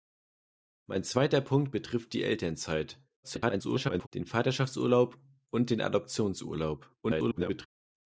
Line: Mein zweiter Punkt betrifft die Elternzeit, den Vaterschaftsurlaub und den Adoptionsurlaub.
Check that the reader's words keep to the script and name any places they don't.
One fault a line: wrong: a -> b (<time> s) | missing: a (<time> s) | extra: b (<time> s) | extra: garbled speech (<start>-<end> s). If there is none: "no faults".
extra: garbled speech (3.2-4.1 s)
extra: garbled speech (7.0-7.7 s)